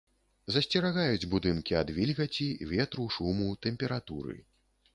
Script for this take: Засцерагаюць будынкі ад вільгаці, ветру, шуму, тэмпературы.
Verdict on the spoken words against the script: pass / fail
pass